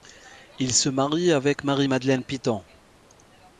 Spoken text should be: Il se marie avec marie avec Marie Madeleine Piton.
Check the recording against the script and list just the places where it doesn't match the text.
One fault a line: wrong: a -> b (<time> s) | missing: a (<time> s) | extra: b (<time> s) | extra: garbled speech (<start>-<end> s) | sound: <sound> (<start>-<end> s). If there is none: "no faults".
missing: avec Marie (1.9 s)